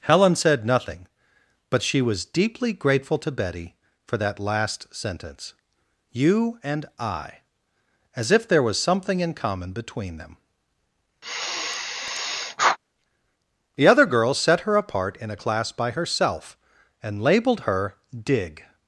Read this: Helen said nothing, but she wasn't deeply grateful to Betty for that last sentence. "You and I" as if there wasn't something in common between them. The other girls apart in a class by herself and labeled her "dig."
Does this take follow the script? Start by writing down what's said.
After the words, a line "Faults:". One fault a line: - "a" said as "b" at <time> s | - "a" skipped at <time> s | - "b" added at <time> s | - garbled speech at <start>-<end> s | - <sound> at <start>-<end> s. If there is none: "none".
Helen said nothing, but she was deeply grateful to Betty for that last sentence. "You and I" as if there was something in common between them. The other girls set her apart in a class by herself and labeled her "dig."
Faults:
- "wasn't" said as "was" at 2.0 s
- "wasn't" said as "was" at 8.6 s
- sigh at 11.2-12.8 s
- "set her" added at 14.4 s